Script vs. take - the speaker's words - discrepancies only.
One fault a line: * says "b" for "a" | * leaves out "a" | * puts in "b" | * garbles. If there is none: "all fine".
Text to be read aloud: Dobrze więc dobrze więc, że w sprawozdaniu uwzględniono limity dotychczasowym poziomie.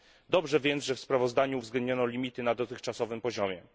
* leaves out "dobrze więc"
* puts in "na"